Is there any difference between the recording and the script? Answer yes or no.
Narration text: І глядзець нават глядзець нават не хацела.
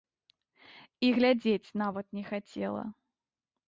yes